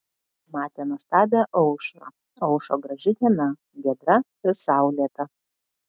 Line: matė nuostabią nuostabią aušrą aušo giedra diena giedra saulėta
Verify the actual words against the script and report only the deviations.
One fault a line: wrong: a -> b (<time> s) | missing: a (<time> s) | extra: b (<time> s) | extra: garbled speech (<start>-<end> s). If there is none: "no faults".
missing: nuostabią (1.4 s)
wrong: giedra -> graži (2.9 s)
extra: ir (4.5 s)